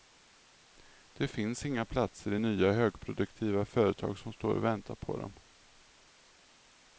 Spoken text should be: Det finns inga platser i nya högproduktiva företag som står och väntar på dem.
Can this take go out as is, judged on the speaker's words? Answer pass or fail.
pass